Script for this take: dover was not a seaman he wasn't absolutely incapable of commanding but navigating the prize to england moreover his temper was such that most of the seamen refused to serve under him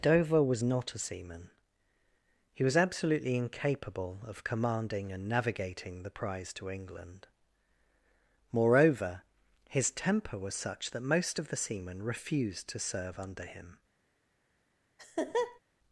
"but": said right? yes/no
no